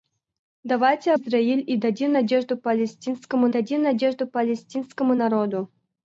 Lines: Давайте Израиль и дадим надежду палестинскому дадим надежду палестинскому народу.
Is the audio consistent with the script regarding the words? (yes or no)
yes